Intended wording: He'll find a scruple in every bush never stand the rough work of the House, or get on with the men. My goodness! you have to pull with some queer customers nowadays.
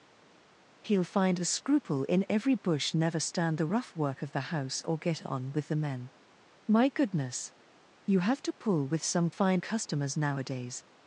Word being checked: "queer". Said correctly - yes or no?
no